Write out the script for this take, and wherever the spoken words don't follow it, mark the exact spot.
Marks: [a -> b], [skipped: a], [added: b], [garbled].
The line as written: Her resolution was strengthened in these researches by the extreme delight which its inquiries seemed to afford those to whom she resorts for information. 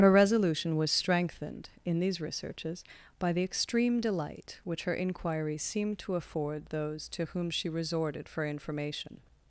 Her resolution was strengthened in these researches by the extreme delight which [its -> her] inquiries seemed to afford those to whom she [resorts -> resorted] for information.